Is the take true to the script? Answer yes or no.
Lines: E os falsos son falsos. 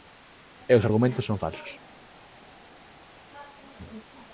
no